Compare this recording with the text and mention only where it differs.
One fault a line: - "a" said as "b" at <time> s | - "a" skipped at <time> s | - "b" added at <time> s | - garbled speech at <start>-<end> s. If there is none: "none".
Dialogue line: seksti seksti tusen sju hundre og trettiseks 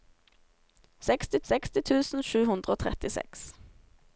none